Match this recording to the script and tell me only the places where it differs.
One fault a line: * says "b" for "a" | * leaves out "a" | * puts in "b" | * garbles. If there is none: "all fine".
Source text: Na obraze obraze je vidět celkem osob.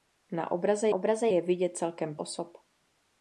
all fine